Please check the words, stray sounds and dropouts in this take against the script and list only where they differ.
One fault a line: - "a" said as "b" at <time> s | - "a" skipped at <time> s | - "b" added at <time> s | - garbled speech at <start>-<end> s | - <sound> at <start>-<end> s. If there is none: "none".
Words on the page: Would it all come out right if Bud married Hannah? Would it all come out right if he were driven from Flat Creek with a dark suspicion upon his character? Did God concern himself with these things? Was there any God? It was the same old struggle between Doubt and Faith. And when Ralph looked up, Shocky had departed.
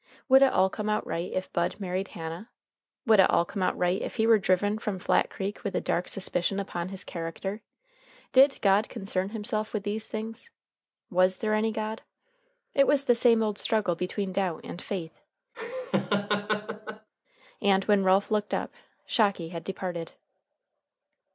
- laugh at 15.5-17.1 s